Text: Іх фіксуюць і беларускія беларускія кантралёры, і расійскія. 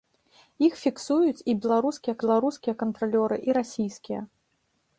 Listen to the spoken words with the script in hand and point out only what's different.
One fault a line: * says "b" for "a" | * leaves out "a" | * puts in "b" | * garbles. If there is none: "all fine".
all fine